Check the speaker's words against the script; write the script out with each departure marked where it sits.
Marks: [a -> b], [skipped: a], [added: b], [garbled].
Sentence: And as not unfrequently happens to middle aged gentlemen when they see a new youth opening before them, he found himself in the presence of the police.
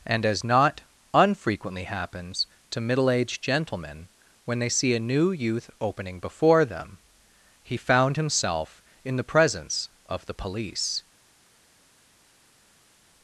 And as not unfrequently happens to middle aged gentlemen when they see a new youth opening before them, he found himself in the presence of the police.